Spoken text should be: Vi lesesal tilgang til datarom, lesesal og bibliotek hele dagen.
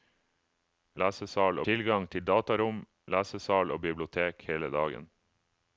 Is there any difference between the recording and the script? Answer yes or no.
no